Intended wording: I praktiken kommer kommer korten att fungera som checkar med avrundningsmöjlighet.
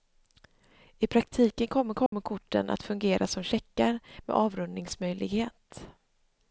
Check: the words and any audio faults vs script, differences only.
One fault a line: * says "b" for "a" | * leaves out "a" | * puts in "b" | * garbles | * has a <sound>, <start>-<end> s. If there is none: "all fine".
* has a dropout, 2.1-2.1 s